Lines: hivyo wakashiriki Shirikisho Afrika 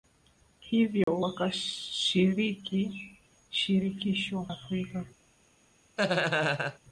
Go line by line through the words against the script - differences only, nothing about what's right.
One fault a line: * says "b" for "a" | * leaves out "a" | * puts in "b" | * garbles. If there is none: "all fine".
all fine